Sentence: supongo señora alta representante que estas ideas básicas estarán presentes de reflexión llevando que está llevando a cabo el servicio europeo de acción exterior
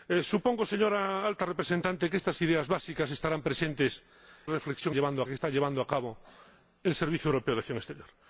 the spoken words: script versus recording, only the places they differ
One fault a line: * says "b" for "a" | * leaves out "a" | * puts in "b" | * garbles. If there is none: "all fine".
all fine